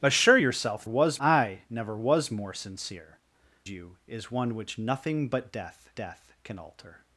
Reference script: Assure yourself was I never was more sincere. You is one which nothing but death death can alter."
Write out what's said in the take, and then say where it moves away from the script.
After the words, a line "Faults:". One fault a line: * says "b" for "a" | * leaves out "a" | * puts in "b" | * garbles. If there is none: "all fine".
Assure yourself was I never was more sincere. You is one which nothing but death death can alter."
Faults:
all fine